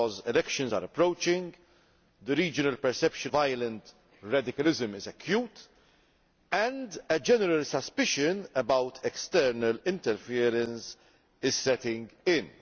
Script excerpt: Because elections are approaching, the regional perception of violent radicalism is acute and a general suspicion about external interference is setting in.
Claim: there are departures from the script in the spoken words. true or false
true